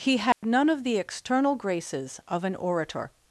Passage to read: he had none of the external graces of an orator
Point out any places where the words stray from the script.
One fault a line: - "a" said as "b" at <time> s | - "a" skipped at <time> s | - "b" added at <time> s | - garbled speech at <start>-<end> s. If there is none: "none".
none